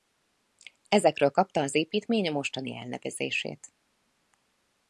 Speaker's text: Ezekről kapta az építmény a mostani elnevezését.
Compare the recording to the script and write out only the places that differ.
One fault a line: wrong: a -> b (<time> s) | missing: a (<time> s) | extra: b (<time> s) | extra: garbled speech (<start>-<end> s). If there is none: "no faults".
no faults